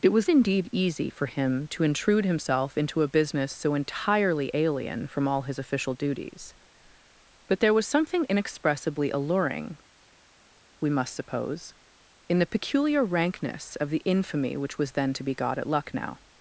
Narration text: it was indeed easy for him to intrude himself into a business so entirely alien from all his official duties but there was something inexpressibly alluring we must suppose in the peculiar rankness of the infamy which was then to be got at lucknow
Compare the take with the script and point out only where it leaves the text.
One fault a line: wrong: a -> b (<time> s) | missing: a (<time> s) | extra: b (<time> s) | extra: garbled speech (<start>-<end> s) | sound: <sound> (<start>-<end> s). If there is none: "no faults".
no faults